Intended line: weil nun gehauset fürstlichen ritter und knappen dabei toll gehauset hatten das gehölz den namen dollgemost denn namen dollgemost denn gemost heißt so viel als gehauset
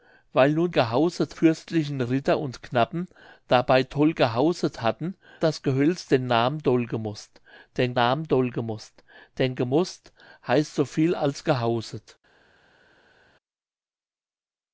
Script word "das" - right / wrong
right